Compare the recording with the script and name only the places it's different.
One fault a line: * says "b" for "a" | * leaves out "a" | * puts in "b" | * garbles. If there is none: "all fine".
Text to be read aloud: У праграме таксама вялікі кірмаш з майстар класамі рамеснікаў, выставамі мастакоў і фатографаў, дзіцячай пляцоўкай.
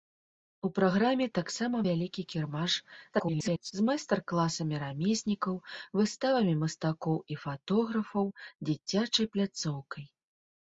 * garbles